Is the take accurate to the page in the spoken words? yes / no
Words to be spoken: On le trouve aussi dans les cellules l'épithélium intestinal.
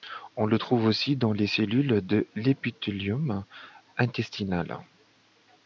no